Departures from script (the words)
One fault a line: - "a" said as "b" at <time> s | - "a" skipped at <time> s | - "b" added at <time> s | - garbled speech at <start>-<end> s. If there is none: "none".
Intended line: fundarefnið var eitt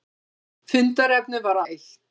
none